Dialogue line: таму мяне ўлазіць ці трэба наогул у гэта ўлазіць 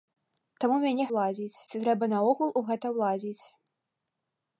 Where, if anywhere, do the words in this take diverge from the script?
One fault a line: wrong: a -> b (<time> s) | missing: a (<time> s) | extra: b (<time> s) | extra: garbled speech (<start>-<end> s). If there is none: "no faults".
no faults